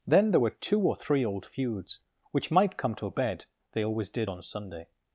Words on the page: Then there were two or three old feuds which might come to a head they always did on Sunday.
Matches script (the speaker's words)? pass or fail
fail